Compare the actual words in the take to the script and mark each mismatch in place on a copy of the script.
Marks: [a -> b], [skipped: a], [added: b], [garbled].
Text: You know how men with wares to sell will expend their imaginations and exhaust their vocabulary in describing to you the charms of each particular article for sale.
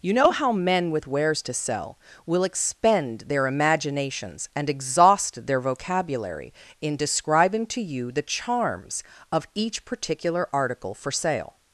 You know how men with wares to sell will expend their imaginations and exhaust their vocabulary in describing to you the charms of each particular article for sale.